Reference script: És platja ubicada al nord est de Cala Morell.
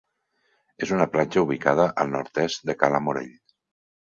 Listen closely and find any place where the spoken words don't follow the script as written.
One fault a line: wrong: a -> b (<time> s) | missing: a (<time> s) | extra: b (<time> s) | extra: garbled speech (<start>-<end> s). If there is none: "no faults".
extra: una (0.9 s)